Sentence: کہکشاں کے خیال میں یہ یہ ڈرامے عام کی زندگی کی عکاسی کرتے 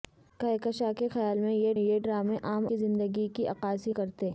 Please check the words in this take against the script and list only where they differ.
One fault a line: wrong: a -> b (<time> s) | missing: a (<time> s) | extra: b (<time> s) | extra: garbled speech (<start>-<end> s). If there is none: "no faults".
no faults